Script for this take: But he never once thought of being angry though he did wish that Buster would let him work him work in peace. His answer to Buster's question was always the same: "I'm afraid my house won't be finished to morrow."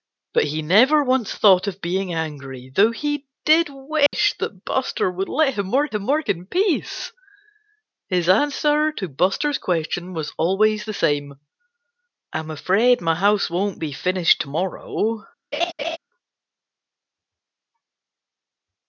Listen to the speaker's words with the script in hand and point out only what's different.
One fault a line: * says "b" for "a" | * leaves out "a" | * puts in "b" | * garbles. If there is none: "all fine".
all fine